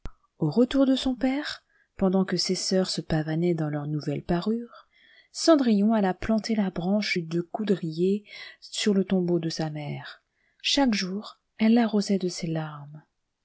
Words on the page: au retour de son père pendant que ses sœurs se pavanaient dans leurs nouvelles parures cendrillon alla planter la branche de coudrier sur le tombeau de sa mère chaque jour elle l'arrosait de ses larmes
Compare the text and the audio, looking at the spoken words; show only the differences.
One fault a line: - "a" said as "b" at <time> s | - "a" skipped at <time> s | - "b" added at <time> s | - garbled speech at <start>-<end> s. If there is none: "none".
none